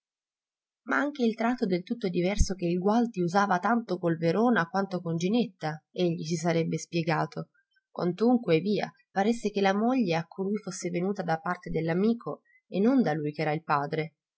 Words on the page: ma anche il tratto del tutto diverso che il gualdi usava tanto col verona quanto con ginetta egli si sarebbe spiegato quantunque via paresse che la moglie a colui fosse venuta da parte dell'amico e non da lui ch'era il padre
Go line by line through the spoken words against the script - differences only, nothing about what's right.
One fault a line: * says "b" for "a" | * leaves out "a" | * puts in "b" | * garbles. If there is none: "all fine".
all fine